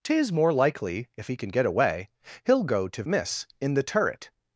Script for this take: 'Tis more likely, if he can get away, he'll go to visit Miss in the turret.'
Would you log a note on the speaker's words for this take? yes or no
yes